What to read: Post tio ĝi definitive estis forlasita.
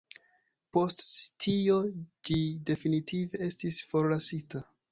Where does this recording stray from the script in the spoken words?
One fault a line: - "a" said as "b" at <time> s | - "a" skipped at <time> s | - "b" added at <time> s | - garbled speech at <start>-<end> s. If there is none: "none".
none